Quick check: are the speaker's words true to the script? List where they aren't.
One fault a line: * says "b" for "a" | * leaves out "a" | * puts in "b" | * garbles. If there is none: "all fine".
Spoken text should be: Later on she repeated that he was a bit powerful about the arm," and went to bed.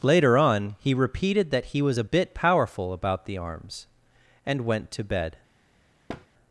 * says "he" for "she"
* says "arms" for "arm"